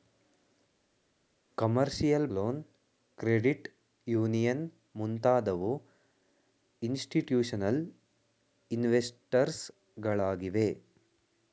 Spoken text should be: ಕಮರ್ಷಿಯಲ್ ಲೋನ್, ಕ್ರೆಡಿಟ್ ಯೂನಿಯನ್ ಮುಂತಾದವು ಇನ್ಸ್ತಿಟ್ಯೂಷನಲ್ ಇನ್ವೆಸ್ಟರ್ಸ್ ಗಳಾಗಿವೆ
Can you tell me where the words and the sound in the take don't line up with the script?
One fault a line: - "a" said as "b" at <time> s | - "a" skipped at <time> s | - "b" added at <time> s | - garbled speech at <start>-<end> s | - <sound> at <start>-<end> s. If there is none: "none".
none